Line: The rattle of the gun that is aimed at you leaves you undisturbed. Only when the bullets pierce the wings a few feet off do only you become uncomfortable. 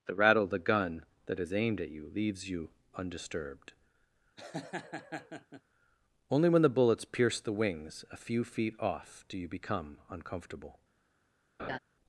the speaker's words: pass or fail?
fail